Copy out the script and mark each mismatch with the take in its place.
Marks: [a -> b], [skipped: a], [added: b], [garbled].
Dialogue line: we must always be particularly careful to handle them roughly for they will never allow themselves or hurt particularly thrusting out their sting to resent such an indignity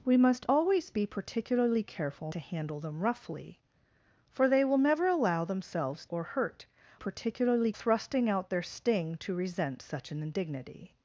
we must always be particularly careful to handle them roughly for they will never allow themselves or hurt particularly thrusting out their sting to resent such an indignity